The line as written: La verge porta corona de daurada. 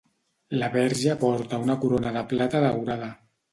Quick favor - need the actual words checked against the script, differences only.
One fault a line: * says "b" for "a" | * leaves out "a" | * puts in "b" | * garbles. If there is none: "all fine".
* puts in "una"
* puts in "plata"